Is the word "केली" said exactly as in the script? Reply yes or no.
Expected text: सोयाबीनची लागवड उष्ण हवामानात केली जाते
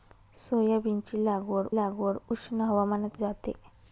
no